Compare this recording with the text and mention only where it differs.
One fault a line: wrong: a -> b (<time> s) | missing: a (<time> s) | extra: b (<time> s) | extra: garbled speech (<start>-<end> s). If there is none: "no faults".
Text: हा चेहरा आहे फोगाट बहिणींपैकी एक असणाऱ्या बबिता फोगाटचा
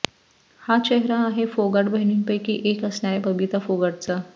no faults